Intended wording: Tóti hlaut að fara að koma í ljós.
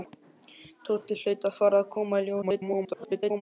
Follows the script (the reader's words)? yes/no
no